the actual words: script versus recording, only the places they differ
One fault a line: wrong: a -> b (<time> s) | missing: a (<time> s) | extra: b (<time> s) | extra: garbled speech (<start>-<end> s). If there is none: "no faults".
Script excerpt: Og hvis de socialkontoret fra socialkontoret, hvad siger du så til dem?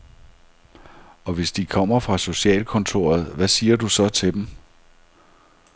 wrong: socialkontoret -> kommer (1.6 s)